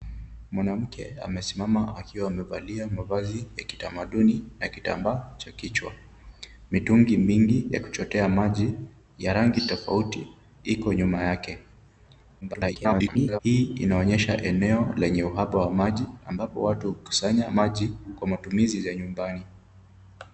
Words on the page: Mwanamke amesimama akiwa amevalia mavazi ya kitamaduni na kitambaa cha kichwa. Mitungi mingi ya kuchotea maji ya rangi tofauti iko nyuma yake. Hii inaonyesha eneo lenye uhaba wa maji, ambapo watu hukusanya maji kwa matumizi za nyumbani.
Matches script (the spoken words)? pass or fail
fail